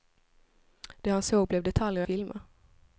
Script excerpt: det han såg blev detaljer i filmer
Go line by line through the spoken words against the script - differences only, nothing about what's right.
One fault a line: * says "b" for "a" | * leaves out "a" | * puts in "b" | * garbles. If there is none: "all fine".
all fine